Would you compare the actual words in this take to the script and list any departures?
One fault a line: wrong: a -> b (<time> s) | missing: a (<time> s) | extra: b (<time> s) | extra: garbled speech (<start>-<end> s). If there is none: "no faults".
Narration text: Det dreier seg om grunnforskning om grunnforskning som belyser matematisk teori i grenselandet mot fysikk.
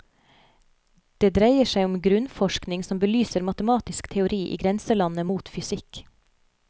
missing: om grunnforskning (2.9 s)